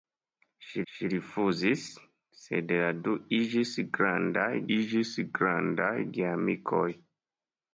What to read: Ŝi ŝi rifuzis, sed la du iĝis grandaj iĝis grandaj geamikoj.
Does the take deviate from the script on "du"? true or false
false